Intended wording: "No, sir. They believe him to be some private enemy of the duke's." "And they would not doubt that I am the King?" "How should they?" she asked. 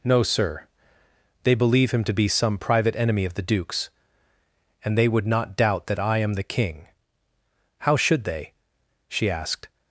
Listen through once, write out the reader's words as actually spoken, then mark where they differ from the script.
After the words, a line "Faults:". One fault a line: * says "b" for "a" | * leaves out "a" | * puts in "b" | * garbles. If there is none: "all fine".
"No, sir. They believe him to be some private enemy of the duke's." "And they would not doubt that I am the King?" "How should they?" she asked.
Faults:
all fine